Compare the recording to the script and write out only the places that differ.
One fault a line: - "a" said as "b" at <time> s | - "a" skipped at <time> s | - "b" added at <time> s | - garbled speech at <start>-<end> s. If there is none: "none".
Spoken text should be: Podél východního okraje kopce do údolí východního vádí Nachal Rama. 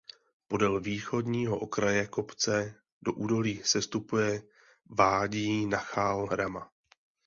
- "východního" said as "sestupuje" at 3.6 s